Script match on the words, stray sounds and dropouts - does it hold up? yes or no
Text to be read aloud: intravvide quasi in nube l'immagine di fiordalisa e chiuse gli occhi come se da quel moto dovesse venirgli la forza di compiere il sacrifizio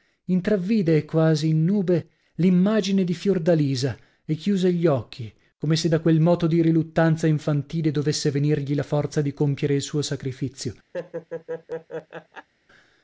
no